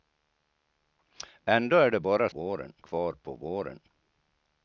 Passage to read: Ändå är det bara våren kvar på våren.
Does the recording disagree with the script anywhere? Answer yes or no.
no